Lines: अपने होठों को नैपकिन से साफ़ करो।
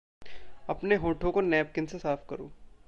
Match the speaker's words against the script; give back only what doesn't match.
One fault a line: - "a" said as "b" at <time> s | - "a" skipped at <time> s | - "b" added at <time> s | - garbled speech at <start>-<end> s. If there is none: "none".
none